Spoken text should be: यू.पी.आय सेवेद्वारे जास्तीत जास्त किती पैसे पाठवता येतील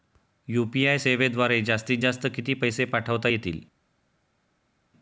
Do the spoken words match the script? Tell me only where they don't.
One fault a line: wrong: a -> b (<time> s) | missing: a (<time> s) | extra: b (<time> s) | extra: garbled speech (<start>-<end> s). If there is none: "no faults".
no faults